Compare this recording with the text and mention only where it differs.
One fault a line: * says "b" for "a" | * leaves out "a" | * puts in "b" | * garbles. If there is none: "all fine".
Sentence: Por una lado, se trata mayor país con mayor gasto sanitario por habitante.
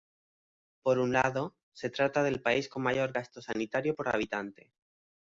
* says "un" for "una"
* says "del" for "mayor"